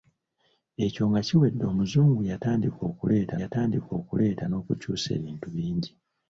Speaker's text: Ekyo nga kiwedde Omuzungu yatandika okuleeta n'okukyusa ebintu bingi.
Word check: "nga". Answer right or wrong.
right